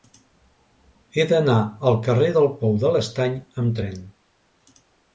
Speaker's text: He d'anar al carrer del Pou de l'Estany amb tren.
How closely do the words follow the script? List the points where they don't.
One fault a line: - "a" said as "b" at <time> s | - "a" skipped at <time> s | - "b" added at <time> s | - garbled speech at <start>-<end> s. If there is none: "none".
none